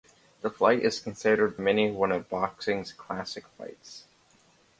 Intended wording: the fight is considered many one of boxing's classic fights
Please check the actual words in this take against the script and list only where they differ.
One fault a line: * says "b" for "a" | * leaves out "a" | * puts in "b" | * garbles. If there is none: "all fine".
all fine